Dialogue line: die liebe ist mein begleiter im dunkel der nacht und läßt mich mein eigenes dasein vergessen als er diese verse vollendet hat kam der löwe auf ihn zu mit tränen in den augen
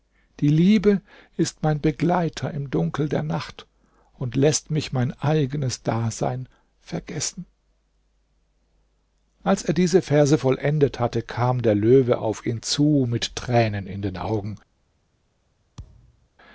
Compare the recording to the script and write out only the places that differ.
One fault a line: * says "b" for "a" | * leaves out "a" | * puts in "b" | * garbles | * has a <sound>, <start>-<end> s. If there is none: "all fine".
* says "hatte" for "hat"
* has a thud, 15.8-16.3 s